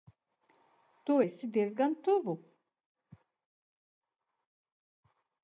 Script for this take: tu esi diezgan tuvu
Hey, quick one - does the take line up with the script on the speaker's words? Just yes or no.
yes